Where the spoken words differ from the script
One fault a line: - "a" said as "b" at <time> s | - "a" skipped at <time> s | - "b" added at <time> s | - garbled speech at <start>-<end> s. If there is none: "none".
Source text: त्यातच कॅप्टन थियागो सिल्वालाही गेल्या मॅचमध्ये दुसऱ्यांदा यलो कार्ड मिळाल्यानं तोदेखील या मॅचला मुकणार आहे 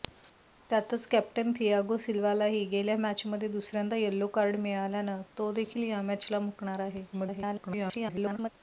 - garbled speech at 7.1-8.5 s